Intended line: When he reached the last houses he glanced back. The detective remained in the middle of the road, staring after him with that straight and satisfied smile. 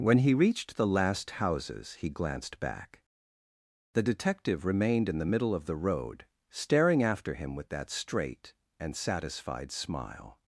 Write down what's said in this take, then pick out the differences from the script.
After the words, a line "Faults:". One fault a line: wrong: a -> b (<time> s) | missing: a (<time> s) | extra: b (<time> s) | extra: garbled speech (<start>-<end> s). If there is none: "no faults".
When he reached the last houses he glanced back. The detective remained in the middle of the road, staring after him with that straight and satisfied smile.
Faults:
no faults